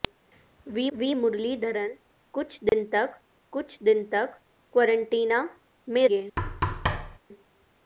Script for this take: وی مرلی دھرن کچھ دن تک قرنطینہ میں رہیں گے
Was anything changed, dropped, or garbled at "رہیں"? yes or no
yes